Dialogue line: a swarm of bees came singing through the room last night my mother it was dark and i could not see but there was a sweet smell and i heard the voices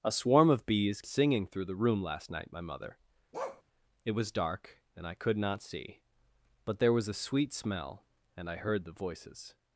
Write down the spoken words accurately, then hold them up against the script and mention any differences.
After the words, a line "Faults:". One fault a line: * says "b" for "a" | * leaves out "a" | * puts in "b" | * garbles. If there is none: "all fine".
a swarm of bees singing through the room last night my mother it was dark and i could not see but there was a sweet smell and i heard the voices
Faults:
* leaves out "came"